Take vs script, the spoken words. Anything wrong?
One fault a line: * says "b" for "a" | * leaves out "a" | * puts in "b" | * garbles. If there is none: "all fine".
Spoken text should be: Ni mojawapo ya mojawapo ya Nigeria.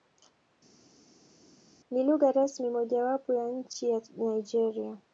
* puts in "lugha rasmi"
* says "nchi" for "mojawapo"